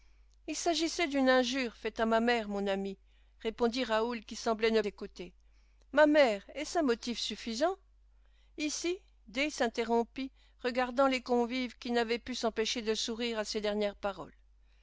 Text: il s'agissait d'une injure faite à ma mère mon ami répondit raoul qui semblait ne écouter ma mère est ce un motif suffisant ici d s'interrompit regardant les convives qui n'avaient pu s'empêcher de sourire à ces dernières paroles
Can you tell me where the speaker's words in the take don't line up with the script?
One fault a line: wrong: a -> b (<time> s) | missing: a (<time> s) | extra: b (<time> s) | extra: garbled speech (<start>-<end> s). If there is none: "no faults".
no faults